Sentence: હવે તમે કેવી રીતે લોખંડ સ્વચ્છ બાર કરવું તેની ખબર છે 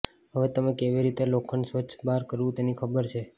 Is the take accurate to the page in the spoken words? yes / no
yes